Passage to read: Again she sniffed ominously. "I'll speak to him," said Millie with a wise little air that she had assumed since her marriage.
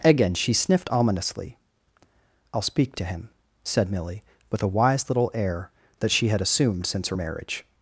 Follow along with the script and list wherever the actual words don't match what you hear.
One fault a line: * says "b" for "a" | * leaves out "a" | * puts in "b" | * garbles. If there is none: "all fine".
all fine